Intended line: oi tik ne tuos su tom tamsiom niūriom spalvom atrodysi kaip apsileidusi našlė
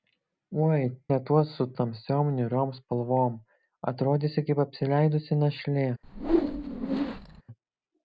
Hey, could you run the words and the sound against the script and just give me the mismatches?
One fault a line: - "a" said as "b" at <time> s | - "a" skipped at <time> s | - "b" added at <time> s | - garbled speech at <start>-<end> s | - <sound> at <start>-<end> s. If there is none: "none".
- "tik" skipped at 0.8 s
- "tom" skipped at 1.7 s
- whoosh at 6.0-7.4 s